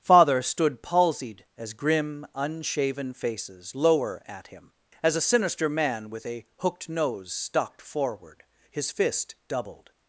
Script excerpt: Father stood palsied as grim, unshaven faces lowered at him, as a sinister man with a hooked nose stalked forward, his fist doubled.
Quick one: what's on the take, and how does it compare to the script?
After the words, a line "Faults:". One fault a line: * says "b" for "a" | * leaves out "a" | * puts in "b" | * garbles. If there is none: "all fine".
Father stood palsied as grim, unshaven faces lower at him, as a sinister man with a hooked nose stalked forward, his fist doubled.
Faults:
* says "lower" for "lowered"